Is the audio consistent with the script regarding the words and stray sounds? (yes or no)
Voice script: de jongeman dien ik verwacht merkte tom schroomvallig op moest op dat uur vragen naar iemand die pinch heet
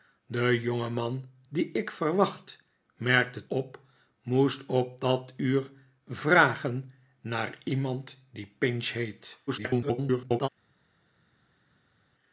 no